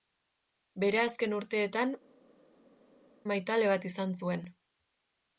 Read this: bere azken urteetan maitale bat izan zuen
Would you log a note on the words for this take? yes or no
no